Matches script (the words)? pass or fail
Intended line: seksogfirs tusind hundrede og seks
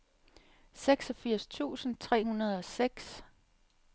fail